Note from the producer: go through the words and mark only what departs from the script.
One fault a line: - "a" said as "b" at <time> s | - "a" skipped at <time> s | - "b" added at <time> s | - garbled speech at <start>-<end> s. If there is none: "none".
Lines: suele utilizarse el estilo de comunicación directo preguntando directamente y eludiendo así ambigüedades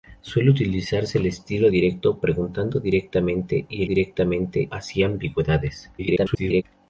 - "de comunicación" skipped at 1.7 s
- "eludiendo" said as "directamente" at 3.8 s
- garbled speech at 6.0-6.6 s